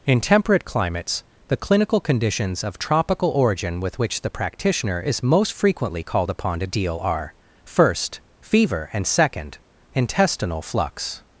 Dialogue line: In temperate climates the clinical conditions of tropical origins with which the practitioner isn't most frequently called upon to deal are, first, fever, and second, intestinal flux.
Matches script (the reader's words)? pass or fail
fail